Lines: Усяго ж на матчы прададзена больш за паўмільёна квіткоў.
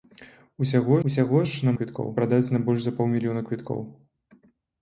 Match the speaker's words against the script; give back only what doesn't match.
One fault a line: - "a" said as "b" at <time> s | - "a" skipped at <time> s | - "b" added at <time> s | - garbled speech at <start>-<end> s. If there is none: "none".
- "усяго" added at 1.1 s
- "матчы" said as "квіткоў" at 1.8 s